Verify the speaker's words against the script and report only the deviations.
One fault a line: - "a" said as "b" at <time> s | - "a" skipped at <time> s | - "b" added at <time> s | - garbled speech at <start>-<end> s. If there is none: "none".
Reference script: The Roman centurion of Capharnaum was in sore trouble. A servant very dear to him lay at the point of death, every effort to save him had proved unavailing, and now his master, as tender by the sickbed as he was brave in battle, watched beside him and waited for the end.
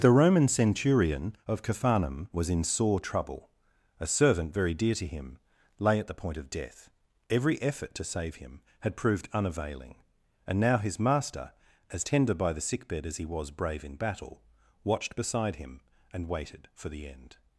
none